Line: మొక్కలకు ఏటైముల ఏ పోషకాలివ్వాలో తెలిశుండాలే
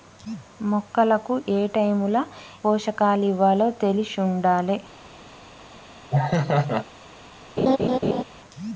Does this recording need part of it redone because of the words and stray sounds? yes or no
yes